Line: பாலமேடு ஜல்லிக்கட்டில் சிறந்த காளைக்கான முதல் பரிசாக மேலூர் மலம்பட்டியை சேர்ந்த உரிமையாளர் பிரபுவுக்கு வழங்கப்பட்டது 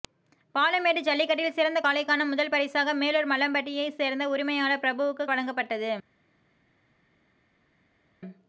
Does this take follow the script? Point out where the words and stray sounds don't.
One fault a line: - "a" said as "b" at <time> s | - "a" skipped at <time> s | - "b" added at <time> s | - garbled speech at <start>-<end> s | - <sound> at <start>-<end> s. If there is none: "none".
none